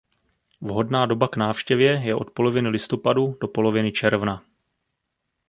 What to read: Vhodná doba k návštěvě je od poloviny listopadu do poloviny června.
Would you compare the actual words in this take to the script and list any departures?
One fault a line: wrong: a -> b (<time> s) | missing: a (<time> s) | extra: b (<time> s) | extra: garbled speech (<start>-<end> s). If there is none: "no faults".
no faults